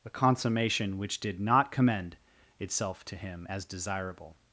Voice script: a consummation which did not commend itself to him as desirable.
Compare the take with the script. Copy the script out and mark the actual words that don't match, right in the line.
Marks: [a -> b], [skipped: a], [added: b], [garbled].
a consummation which did not commend itself to him as desirable.